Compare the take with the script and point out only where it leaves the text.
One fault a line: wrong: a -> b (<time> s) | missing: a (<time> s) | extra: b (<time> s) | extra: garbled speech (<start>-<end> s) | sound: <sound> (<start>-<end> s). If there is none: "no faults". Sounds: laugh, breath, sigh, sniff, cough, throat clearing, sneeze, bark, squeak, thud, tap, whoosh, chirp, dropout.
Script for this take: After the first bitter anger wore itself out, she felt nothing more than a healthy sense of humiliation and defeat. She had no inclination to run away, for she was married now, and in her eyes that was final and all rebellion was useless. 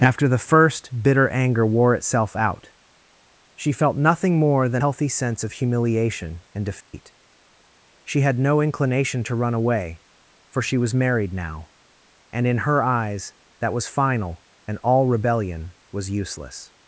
missing: a (4.8 s)
sound: dropout (6.8-6.9 s)